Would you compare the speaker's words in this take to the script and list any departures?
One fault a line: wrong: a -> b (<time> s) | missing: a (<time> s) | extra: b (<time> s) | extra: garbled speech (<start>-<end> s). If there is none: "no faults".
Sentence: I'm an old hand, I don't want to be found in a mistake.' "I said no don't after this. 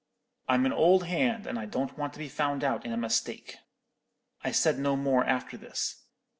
extra: and (1.4 s)
extra: out (2.6 s)
wrong: don't -> more (4.9 s)